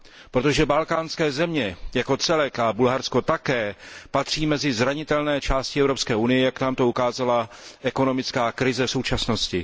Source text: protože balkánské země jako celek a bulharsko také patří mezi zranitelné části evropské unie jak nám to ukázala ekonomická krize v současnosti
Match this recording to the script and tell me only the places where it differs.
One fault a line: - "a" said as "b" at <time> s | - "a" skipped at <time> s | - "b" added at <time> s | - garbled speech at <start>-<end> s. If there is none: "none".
none